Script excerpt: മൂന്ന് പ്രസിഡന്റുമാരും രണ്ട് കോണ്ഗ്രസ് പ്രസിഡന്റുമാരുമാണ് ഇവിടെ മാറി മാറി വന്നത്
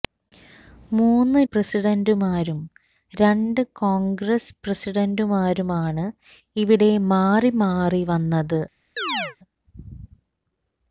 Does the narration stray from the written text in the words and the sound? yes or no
yes